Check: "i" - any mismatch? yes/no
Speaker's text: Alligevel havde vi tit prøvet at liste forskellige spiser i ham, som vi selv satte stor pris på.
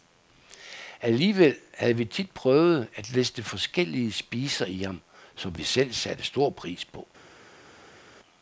no